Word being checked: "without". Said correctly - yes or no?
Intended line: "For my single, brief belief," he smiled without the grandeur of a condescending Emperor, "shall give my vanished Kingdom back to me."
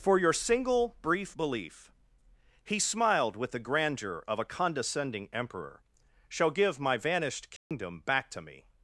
no